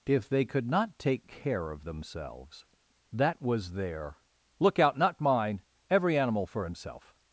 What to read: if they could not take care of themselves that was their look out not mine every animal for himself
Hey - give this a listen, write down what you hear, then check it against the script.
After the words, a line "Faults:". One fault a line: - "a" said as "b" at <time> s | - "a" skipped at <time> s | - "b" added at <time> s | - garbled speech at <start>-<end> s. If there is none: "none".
if they could not take care of themselves that was their look out not mine every animal for himself
Faults:
none